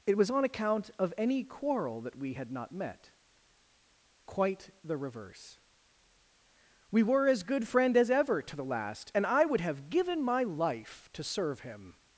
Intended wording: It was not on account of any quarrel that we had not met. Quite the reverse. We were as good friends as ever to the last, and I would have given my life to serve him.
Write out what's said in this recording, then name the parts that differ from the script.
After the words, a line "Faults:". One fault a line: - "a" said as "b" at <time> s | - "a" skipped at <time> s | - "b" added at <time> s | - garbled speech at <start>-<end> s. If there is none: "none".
It was on account of any quarrel that we had not met. Quite the reverse. We were as good friend as ever to the last, and I would have given my life to serve him.
Faults:
- "not" skipped at 0.3 s
- "friends" said as "friend" at 7.7 s